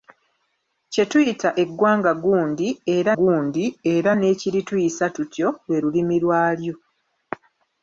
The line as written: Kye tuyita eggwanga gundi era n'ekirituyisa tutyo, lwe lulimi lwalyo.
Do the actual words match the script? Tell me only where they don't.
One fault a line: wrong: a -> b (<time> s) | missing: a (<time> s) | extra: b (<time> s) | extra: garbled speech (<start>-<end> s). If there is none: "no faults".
extra: gundi era (3.2 s)